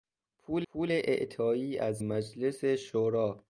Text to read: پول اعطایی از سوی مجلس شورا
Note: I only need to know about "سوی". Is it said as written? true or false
false